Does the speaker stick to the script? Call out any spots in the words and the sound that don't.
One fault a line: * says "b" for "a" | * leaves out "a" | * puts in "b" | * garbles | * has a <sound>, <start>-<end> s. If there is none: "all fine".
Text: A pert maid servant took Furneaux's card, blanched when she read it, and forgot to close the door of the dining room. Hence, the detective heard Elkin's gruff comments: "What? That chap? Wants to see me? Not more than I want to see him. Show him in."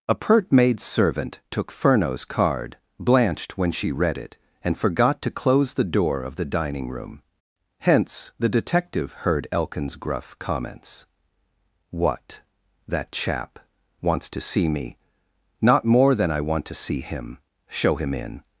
all fine